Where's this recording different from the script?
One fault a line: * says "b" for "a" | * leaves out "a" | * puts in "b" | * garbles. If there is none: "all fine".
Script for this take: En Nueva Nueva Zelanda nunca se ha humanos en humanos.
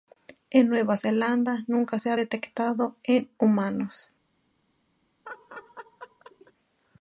* leaves out "Nueva"
* says "detectado" for "humanos"